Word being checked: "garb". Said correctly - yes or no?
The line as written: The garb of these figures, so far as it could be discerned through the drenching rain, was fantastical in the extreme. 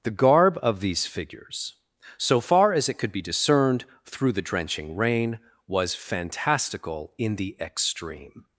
yes